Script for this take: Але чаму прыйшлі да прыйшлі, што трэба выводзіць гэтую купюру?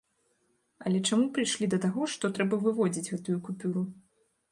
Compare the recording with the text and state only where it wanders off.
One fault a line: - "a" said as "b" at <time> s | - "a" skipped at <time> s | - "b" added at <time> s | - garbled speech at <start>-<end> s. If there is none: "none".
- "прыйшлі" said as "таго" at 1.9 s